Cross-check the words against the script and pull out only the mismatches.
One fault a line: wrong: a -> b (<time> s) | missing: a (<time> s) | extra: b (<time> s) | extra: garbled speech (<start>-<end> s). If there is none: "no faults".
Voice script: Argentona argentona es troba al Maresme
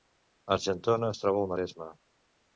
missing: argentona (1.1 s)